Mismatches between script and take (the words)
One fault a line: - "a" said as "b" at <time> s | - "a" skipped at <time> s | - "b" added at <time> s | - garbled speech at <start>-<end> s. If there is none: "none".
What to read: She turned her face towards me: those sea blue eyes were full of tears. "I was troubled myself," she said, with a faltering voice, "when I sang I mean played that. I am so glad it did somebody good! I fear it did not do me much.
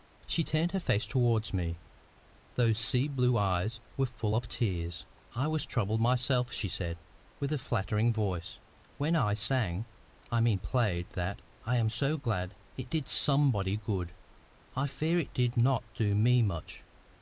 none